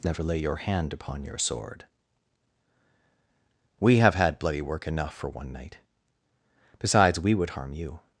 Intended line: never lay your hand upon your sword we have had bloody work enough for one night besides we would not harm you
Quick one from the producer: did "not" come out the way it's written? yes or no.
no